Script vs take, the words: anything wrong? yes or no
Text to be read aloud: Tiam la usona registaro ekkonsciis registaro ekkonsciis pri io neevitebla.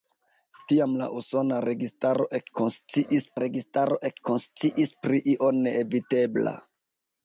no